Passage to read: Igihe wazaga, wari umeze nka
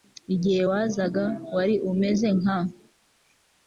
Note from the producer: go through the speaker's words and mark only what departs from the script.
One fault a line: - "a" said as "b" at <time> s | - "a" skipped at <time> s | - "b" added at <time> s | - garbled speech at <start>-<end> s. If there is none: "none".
none